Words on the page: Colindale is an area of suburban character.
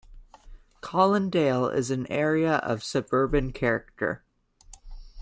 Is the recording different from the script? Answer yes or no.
no